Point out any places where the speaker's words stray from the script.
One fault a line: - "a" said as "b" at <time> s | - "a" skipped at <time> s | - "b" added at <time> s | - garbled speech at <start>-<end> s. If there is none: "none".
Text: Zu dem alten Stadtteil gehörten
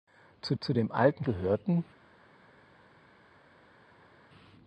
- "zu" added at 0.6 s
- "Stadtteil" skipped at 1.2 s